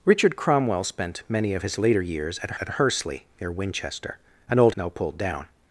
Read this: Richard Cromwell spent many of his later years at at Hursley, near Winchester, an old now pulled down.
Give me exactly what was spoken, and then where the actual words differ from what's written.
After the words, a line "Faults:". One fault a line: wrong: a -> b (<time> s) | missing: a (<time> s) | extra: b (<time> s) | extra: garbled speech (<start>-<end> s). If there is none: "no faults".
Richard Cromwell spent many of his later years at at Hursley, near Winchester, an old now pulled down.
Faults:
no faults